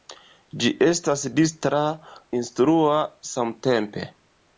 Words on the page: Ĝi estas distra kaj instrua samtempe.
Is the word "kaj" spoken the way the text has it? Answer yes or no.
no